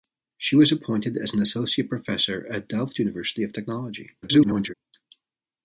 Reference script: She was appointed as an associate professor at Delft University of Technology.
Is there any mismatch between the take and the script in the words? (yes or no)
yes